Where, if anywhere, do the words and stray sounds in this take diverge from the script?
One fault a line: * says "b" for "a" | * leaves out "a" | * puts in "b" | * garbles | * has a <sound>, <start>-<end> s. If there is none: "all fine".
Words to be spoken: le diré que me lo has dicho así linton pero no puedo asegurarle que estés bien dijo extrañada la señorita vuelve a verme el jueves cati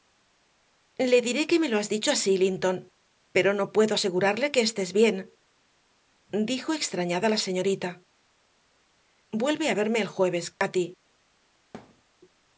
* has a dropout, 10.5-10.6 s
* has a thud, 11.7-12.0 s